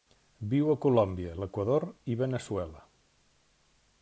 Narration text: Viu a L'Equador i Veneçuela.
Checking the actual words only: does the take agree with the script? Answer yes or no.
no